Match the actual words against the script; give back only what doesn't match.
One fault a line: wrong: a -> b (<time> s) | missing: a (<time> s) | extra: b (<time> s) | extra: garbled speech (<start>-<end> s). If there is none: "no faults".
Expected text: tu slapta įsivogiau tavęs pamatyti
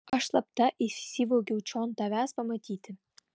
wrong: tu -> aš (0.2 s)
extra: čion (1.7 s)